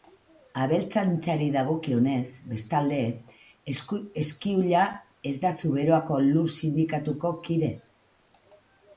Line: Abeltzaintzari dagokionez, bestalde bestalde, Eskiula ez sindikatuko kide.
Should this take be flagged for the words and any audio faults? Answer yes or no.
yes